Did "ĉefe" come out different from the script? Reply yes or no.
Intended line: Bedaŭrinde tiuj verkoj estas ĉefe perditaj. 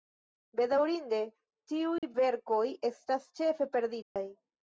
no